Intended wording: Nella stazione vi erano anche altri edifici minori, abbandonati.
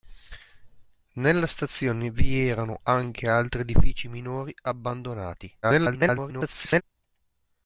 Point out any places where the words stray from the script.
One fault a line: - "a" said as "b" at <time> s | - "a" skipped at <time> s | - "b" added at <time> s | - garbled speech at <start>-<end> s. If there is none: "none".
- garbled speech at 5.6-6.8 s